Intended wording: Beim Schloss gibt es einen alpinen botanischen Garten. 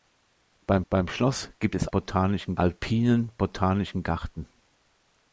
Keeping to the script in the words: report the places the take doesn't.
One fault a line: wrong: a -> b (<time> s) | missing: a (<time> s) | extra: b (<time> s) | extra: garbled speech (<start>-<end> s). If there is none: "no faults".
extra: beim (0.9 s)
wrong: einen -> botanischen (1.9 s)